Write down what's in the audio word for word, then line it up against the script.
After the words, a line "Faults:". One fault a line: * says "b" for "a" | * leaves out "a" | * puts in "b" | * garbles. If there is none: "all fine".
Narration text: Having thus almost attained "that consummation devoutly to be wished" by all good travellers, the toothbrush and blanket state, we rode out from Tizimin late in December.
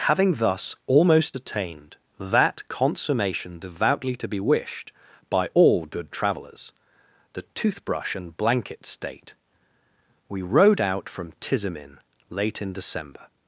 Having thus almost attained "that consummation devoutly to be wished" by all good travellers, the toothbrush and blanket state, we rode out from Tizimin late in December.
Faults:
all fine